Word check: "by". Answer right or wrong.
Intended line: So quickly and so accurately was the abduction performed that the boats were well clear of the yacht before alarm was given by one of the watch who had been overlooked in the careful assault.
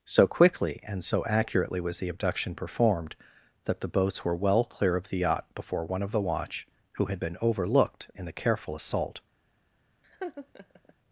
wrong